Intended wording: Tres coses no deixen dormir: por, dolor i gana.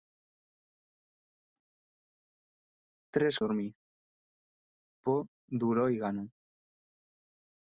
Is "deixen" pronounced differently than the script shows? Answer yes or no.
yes